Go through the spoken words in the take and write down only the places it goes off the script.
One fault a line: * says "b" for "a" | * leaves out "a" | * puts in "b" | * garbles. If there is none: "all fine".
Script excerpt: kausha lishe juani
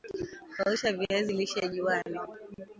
* puts in "viazi"